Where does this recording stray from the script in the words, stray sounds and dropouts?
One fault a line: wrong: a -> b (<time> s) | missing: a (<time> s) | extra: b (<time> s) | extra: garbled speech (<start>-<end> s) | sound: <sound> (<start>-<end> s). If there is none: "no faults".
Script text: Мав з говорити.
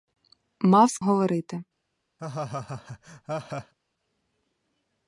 sound: laugh (2.2-3.7 s)